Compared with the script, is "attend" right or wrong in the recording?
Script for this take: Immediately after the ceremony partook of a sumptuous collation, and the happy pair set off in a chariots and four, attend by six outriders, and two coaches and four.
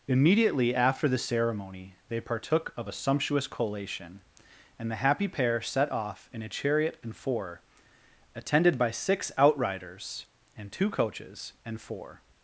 wrong